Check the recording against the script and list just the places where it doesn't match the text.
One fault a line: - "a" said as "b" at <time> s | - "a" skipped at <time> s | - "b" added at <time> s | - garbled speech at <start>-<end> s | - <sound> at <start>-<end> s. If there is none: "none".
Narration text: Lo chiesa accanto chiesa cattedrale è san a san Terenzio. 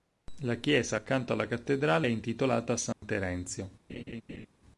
- "Lo" said as "La" at 0.4 s
- "chiesa" said as "alla" at 1.3 s
- "san" said as "intitolata" at 2.1 s
- dropout at 2.9-3.0 s
- laugh at 3.9-4.5 s